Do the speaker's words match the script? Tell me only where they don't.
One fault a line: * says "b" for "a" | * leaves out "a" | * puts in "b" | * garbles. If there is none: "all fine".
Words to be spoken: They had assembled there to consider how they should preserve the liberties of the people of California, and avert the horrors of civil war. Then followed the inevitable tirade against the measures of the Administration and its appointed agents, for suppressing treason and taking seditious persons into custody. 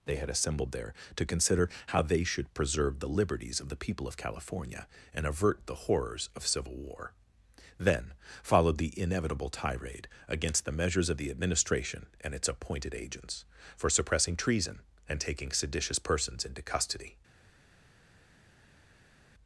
all fine